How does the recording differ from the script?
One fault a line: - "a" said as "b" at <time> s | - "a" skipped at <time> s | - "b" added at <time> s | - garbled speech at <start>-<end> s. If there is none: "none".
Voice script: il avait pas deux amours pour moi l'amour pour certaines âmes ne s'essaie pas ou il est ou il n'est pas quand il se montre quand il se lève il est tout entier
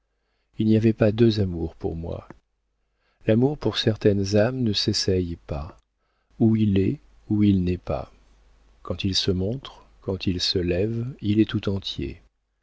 - "n'y" added at 0.7 s